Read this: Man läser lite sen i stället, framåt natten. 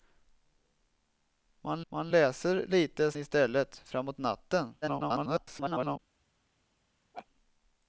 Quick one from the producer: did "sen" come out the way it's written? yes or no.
no